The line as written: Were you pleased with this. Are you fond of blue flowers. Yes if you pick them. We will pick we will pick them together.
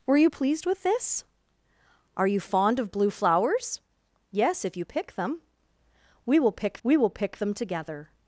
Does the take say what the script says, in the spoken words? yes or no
yes